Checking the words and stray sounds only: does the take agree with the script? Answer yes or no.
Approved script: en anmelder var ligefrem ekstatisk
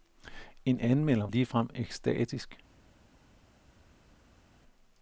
no